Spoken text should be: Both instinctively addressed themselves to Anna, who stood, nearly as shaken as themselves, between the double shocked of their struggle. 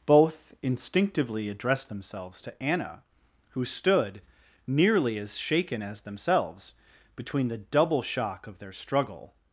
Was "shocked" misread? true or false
true